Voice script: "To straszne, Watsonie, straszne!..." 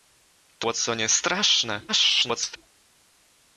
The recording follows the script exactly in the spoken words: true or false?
false